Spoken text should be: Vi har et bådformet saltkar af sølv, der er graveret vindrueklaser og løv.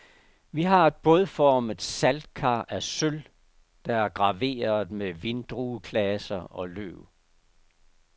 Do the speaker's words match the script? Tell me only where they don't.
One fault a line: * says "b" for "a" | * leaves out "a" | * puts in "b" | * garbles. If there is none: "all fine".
* puts in "med"